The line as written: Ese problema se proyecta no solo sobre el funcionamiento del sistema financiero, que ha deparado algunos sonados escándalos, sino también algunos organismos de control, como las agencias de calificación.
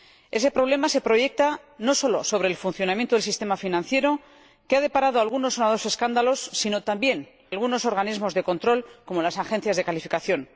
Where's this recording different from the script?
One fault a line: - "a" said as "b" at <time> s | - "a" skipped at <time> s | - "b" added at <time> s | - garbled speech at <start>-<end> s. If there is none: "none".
none